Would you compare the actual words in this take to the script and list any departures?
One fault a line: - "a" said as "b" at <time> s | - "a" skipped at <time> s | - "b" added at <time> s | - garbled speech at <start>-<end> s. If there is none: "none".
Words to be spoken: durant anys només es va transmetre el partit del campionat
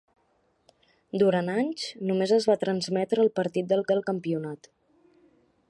- "del" added at 3.9 s